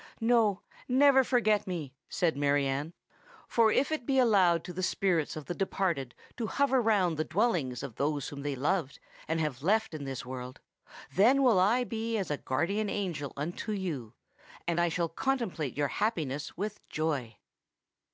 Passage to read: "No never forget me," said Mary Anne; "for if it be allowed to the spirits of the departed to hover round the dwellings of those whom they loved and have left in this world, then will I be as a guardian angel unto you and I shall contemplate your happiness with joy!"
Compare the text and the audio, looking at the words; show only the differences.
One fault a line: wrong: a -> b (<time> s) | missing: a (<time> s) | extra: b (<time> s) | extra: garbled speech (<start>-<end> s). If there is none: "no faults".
no faults